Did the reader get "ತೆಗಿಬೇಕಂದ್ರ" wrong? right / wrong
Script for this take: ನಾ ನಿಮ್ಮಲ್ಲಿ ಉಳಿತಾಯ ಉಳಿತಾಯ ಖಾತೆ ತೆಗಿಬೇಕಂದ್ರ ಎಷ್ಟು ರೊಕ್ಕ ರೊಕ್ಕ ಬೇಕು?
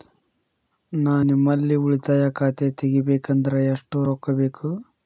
right